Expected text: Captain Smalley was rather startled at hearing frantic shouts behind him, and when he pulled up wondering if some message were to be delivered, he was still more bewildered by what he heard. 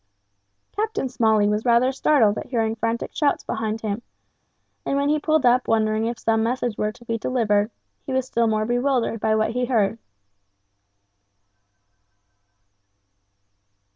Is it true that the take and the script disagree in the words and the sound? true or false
false